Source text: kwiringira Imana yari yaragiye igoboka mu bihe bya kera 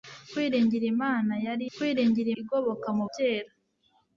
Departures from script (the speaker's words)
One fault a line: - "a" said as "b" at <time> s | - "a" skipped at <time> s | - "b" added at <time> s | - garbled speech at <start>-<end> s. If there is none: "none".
- "yaragiye" said as "kwiringira" at 1.8 s
- "bihe bya" skipped at 3.0 s